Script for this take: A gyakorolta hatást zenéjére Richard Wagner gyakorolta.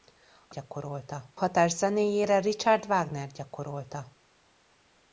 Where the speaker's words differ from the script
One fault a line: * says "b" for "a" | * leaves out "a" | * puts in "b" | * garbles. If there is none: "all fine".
all fine